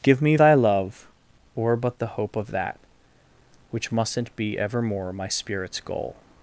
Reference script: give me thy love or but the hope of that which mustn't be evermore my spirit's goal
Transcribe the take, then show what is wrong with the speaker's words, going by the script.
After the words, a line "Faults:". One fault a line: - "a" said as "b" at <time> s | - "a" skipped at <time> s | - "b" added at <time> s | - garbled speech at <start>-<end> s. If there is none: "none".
give me thy love or but the hope of that which mustn't be evermore my spirit's goal
Faults:
none